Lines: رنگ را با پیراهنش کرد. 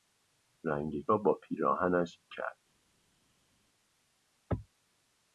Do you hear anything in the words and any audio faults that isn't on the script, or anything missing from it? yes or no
no